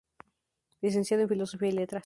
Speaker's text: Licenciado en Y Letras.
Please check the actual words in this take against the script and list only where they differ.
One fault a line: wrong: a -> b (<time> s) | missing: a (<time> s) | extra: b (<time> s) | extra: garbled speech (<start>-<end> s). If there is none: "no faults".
extra: Filosofía (1.3 s)